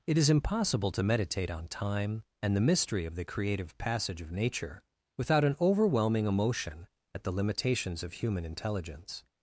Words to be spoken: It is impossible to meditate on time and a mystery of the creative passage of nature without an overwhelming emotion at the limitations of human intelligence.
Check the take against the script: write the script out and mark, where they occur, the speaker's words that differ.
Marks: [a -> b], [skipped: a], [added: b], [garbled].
It is impossible to meditate on time and [a -> the] mystery of the creative passage of nature without an overwhelming emotion at the limitations of human intelligence.